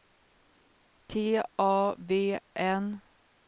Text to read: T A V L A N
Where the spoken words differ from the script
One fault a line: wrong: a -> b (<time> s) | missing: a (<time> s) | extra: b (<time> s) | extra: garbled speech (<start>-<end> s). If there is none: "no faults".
missing: L A (2.4 s)